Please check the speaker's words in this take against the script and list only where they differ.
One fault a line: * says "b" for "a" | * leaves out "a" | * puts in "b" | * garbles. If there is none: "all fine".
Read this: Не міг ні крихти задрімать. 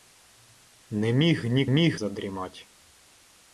* says "міг" for "крихти"